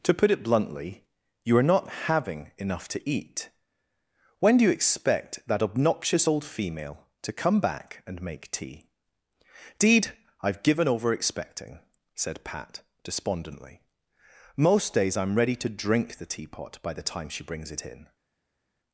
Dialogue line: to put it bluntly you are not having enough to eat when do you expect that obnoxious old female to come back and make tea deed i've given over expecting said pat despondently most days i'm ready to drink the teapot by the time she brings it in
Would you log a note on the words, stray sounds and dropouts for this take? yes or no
no